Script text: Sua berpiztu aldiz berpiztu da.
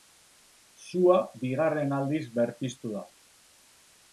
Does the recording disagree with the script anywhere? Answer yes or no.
yes